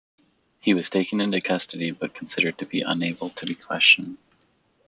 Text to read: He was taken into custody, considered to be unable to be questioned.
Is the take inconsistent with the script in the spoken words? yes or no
yes